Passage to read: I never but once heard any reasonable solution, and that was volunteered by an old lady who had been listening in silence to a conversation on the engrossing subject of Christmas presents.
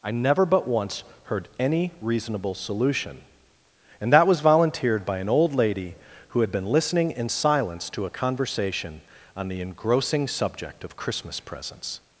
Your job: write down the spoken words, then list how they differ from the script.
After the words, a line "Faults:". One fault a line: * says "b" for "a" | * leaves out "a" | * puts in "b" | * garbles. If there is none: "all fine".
I never but once heard any reasonable solution, and that was volunteered by an old lady who had been listening in silence to a conversation on the engrossing subject of Christmas presents.
Faults:
all fine